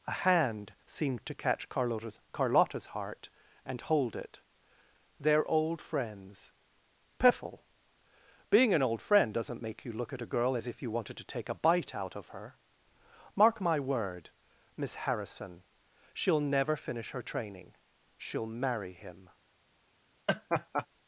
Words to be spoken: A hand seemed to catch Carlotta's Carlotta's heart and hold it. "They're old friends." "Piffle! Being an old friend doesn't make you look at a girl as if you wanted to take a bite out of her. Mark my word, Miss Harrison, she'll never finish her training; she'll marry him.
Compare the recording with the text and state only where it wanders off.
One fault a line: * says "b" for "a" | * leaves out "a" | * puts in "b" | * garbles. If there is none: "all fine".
all fine